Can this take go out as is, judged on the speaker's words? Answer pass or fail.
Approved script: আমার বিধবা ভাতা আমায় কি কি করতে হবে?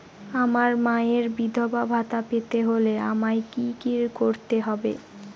fail